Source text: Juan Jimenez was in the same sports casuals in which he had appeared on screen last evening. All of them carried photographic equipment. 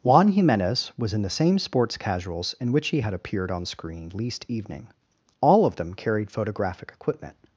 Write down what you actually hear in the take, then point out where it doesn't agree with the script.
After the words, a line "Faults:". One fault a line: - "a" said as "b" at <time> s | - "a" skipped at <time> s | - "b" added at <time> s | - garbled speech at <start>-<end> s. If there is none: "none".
Juan Jimenez was in the same sports casuals in which he had appeared on screen least evening. All of them carried photographic equipment.
Faults:
- "last" said as "least" at 4.1 s